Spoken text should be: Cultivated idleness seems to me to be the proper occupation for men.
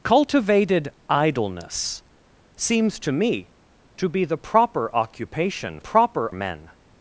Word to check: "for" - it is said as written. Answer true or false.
false